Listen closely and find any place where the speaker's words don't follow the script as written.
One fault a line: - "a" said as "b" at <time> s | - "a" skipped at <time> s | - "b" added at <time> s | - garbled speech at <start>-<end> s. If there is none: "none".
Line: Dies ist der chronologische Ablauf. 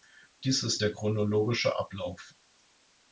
none